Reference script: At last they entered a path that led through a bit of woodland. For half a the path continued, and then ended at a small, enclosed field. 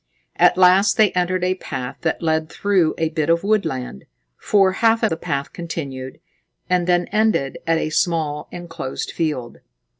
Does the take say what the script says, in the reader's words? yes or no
yes